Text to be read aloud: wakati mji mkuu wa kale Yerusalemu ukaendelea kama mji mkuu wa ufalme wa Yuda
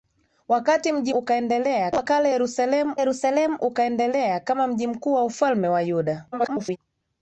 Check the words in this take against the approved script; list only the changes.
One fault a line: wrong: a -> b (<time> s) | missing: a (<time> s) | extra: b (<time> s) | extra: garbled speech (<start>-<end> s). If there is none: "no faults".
wrong: mkuu -> ukaendelea (1.1 s)
extra: Yerusalemu (3.0 s)
extra: garbled speech (6.3-6.8 s)